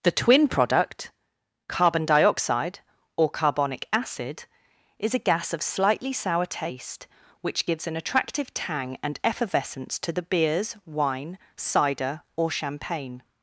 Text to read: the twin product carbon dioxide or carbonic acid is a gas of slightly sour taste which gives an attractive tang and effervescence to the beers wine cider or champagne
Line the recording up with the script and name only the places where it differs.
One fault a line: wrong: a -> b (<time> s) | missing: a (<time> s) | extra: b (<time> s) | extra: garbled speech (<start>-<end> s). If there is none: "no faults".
no faults